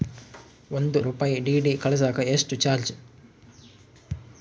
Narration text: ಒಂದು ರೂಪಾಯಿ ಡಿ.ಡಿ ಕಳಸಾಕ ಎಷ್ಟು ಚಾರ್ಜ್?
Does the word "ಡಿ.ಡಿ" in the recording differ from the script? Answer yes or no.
no